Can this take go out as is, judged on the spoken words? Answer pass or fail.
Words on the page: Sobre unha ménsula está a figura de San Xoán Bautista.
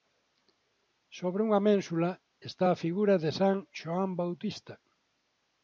pass